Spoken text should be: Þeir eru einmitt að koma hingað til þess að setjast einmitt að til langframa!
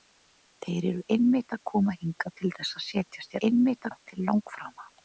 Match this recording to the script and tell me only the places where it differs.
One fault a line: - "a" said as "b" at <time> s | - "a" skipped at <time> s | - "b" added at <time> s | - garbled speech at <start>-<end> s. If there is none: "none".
none